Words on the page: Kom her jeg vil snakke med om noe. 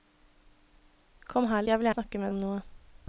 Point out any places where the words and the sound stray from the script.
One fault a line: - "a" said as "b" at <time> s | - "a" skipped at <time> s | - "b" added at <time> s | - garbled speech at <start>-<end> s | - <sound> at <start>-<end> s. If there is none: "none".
none